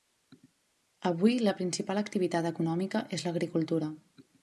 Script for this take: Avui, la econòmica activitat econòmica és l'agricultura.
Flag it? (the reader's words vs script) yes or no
yes